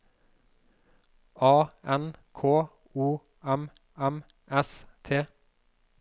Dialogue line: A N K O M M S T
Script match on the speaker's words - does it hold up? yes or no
yes